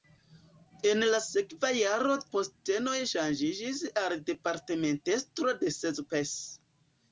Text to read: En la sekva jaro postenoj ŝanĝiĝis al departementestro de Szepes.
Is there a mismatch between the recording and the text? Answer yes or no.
no